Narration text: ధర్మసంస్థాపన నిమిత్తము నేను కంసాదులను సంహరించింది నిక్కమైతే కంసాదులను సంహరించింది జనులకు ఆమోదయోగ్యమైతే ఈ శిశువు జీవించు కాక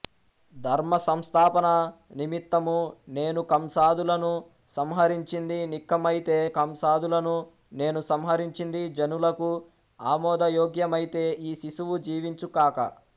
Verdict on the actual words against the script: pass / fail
fail